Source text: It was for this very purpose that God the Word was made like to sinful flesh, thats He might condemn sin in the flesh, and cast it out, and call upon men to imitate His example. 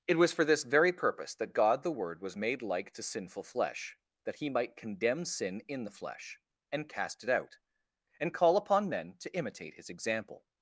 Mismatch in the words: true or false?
true